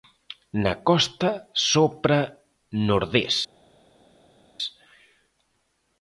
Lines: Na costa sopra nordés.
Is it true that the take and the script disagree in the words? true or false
false